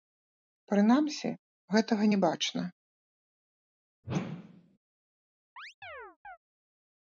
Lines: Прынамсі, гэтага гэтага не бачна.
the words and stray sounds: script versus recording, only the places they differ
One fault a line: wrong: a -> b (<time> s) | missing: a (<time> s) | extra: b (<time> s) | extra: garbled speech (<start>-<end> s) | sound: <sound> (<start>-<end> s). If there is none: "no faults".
missing: гэтага (2.1 s)
sound: whoosh (4.0-4.8 s)
sound: chirp (5.6-6.4 s)